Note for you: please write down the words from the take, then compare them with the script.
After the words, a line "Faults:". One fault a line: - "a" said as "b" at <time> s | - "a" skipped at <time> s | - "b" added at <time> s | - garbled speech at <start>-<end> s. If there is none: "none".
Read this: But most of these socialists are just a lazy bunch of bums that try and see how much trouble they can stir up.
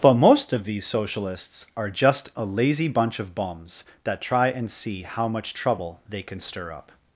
But most of these socialists are just a lazy bunch of bums that try and see how much trouble they can stir up.
Faults:
none